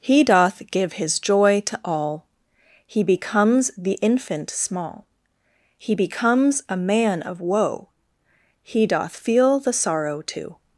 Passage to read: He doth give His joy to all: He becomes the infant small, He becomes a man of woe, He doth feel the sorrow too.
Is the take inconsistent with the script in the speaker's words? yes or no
no